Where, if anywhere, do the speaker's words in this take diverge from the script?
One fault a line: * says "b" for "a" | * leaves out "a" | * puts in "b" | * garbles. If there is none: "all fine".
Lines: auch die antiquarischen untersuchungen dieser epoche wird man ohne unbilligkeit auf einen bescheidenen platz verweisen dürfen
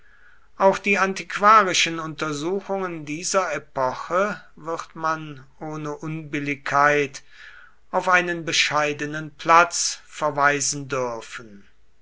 all fine